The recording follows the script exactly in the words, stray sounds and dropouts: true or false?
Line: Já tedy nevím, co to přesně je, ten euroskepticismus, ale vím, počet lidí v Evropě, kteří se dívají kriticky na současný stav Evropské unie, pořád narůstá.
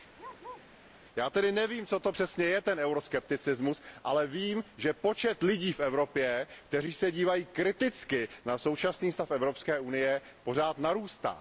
false